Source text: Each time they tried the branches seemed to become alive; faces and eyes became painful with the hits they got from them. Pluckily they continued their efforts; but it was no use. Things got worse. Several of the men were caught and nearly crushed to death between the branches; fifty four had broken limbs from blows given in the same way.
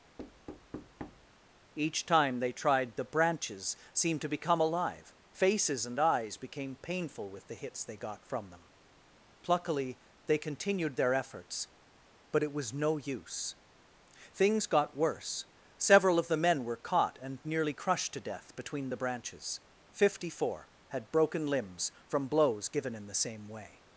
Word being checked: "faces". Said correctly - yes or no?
yes